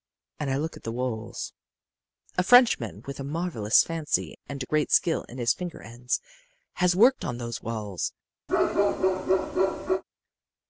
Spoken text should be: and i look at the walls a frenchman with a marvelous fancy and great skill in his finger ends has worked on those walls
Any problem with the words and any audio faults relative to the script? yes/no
yes